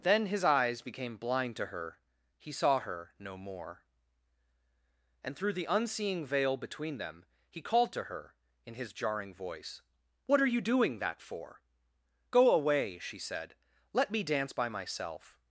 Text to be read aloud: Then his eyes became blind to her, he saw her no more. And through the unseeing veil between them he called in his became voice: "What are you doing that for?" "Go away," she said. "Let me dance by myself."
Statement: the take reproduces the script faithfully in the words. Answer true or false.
false